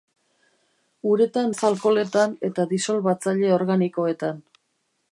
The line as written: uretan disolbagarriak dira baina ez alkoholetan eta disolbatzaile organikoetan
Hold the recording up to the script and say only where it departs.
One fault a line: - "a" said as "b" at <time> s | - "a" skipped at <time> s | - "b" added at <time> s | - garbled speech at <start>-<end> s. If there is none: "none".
- "disolbagarriak dira baina" skipped at 1.5 s